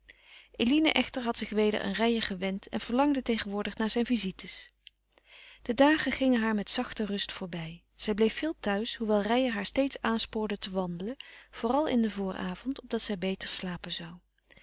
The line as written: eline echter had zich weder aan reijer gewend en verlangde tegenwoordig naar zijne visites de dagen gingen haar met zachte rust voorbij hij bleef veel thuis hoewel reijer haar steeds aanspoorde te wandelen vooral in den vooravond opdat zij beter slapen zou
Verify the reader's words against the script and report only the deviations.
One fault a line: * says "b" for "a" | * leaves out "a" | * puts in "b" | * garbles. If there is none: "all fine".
* says "zij" for "hij"